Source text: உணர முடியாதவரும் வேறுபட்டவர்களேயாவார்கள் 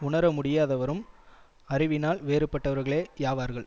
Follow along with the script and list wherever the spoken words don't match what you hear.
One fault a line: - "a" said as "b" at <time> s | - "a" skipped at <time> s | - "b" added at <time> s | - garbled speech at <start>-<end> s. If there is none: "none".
- "அறிவினால்" added at 1.7 s